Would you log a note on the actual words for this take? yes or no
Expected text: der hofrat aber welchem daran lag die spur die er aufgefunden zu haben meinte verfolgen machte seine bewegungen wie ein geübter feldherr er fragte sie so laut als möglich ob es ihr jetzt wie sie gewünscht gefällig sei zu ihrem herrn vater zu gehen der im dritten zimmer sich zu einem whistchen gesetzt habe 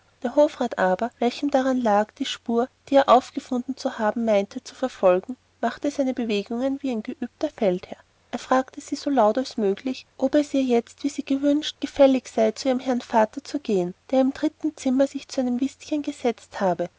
yes